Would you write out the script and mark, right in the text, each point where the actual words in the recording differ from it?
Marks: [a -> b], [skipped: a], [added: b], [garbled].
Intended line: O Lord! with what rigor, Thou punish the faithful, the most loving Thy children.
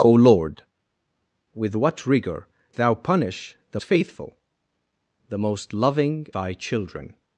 O Lord! with what rigor, Thou punish the faithful, the most loving Thy children.